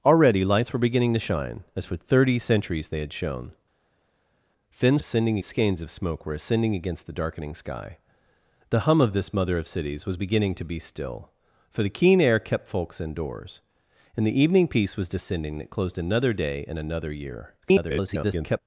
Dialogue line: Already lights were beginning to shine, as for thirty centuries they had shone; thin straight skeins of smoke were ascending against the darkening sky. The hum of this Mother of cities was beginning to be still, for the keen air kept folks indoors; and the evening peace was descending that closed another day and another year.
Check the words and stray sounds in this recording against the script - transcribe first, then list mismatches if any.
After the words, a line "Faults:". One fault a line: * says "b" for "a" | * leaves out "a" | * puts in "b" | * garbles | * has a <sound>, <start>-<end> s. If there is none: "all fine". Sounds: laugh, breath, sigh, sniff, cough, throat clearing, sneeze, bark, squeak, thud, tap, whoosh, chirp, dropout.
Already lights were beginning to shine, as for thirty centuries they had shone; thin ascending skeins of smoke were ascending against the darkening sky. The hum of this Mother of cities was beginning to be still, for the keen air kept folks indoors; and the evening peace was descending that closed another day and another year. [garbled]
Faults:
* says "ascending" for "straight"
* garbles